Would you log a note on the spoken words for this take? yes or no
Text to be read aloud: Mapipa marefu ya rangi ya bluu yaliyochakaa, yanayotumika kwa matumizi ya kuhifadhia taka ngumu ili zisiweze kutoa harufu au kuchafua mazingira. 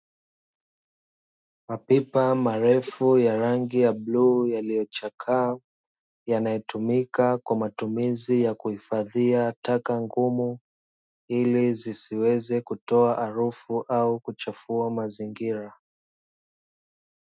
no